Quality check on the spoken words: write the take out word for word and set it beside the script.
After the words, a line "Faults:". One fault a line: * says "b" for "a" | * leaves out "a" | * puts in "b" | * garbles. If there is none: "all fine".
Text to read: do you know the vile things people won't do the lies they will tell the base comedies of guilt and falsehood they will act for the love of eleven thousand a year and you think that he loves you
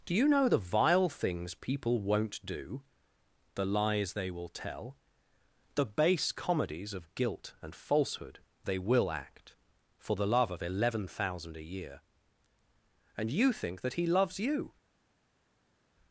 do you know the vile things people won't do the lies they will tell the base comedies of guilt and falsehood they will act for the love of eleven thousand a year and you think that he loves you
Faults:
all fine